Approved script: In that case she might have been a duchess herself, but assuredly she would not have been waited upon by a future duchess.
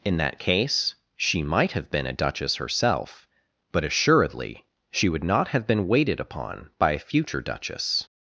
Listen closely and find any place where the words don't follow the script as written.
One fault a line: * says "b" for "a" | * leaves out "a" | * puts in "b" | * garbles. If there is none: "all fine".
all fine